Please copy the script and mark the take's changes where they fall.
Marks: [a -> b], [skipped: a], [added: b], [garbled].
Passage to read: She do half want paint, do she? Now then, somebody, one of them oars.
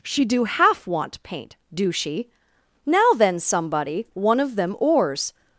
She do half want paint, do she? Now then, somebody, one of them oars.